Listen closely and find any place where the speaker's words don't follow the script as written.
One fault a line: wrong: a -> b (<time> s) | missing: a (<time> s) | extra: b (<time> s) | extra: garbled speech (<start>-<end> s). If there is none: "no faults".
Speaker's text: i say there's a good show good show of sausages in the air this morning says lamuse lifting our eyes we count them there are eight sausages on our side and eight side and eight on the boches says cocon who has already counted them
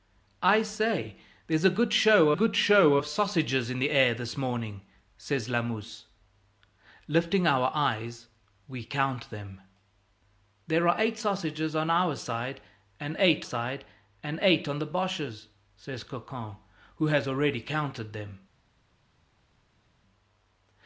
no faults